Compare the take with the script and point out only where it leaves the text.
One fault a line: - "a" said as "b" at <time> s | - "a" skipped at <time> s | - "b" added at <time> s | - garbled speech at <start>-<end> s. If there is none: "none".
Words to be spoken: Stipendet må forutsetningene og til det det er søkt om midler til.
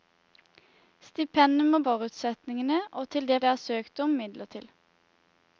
none